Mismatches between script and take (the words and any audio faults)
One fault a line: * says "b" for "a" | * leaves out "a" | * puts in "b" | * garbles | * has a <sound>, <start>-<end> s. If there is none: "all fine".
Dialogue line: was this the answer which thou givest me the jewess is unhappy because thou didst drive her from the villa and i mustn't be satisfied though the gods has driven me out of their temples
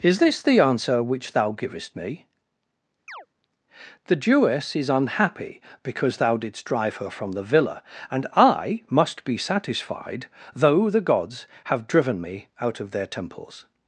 * says "is" for "was"
* has a chirp, 3.1-3.3 s
* says "must" for "mustn't"
* says "have" for "has"